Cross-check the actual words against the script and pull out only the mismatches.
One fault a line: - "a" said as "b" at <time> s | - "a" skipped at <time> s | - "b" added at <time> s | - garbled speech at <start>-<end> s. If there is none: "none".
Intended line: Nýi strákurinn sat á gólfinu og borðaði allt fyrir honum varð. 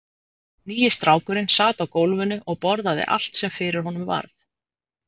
- "sem" added at 3.4 s